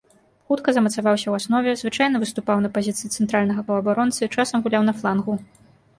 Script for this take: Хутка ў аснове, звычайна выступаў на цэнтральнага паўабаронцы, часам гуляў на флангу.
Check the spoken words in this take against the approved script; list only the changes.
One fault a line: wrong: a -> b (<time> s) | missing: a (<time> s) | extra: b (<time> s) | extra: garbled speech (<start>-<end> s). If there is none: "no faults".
extra: замацаваўся (0.8 s)
extra: пазіцыі (2.8 s)